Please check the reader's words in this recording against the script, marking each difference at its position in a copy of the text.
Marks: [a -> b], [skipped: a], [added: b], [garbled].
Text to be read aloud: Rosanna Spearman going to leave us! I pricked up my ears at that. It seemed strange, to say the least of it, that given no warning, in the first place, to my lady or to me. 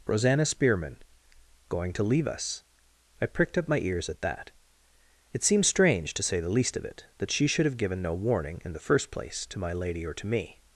Rosanna Spearman going to leave us! I pricked up my ears at that. It seemed strange, to say the least of it, that [added: she should have] given no warning, in the first place, to my lady or to me.